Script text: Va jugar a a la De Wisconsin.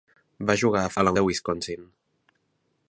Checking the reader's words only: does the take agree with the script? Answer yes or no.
yes